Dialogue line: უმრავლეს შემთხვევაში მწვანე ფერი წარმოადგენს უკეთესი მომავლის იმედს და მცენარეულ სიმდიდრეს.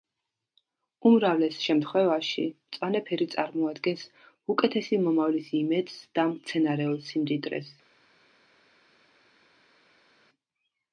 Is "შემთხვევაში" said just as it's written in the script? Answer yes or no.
yes